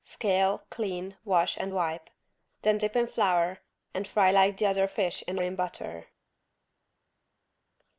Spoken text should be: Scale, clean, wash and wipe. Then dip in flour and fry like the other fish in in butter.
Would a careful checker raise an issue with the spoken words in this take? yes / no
no